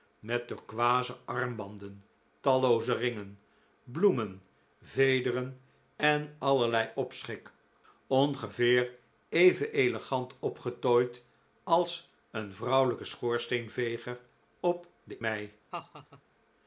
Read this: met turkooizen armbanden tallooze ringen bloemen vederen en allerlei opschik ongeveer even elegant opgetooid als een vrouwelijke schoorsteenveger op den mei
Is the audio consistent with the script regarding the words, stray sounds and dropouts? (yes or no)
no